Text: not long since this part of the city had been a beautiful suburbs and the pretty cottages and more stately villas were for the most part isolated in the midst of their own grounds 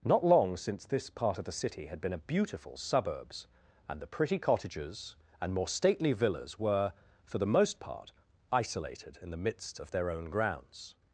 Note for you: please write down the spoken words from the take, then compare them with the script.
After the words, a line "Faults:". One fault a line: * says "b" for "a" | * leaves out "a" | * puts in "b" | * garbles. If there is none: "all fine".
not long since this part of the city had been a beautiful suburbs and the pretty cottages and more stately villas were for the most part isolated in the midst of their own grounds
Faults:
all fine